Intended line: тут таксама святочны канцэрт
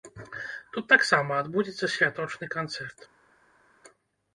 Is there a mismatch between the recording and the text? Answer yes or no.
yes